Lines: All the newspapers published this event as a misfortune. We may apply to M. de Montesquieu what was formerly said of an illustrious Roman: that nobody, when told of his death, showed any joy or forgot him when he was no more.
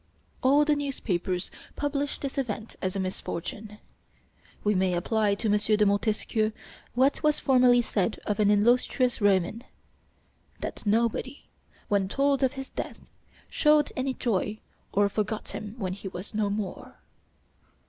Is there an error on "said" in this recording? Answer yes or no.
no